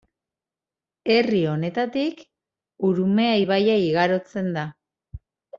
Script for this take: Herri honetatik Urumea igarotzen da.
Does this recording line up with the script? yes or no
no